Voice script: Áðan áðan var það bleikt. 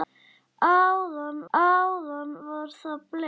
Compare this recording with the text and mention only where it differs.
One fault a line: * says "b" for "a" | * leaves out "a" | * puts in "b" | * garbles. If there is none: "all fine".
all fine